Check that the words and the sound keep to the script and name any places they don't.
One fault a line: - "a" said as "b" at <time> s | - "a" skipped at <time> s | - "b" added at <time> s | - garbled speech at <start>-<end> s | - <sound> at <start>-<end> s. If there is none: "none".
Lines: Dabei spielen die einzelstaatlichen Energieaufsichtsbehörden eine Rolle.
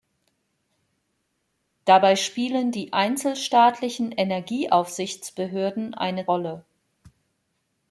none